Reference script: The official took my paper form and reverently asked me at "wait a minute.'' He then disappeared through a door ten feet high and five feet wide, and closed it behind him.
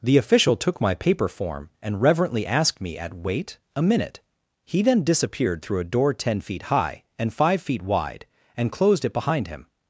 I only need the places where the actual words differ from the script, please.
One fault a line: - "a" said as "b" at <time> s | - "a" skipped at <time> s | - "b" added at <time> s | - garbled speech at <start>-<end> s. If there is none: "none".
none